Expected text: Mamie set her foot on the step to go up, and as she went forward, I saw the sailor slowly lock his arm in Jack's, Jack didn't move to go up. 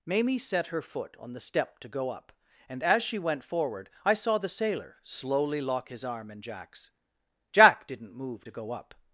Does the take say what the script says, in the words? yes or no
yes